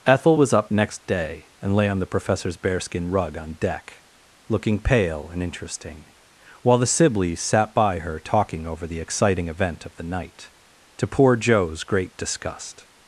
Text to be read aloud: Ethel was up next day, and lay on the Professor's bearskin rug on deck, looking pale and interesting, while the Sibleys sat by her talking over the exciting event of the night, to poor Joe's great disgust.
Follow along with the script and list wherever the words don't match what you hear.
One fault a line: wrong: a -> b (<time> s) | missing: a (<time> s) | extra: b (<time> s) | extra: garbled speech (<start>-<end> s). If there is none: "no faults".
no faults